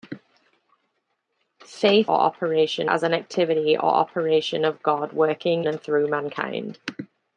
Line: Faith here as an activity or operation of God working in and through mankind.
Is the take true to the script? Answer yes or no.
no